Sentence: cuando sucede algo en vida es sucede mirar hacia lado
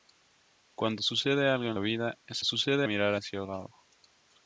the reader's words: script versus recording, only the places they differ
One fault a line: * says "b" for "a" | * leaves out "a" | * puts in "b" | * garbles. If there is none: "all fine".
all fine